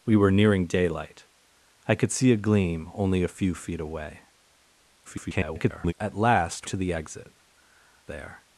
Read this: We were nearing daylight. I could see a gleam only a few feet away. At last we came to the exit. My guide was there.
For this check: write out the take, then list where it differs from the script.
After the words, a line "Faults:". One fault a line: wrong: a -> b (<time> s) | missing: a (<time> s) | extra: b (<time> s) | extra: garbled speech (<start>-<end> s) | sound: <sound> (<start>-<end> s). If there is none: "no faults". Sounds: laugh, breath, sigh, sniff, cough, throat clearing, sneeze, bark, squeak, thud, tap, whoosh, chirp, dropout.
We were nearing daylight. I could see a gleam only a few feet away. [garbled] At last to the exit. There.
Faults:
extra: garbled speech (5.0-5.9 s)
missing: we came (6.7 s)
missing: My guide was (7.3 s)